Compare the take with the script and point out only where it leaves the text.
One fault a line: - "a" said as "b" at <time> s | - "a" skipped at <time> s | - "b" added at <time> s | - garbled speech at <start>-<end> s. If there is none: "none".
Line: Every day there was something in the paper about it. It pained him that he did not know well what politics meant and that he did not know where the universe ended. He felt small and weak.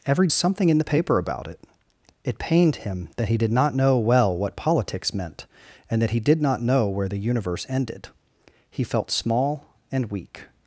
- "day there was" skipped at 0.3 s